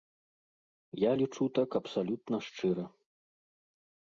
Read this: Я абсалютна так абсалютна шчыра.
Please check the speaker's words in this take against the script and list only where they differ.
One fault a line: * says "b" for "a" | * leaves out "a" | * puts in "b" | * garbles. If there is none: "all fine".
* says "лічу" for "абсалютна"